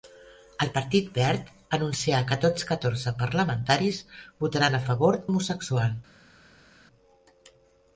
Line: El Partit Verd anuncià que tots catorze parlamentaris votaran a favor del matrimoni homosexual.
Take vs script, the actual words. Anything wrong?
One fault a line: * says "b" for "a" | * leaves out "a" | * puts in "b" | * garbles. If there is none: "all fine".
* leaves out "del matrimoni"